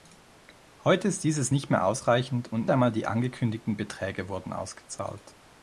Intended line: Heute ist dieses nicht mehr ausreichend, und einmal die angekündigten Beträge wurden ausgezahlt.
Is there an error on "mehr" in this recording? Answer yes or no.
no